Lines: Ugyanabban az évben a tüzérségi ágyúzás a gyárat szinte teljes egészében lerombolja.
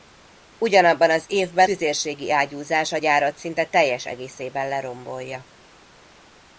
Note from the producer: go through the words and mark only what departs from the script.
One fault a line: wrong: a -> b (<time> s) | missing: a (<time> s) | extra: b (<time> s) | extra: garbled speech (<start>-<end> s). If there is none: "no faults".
missing: a (1.7 s)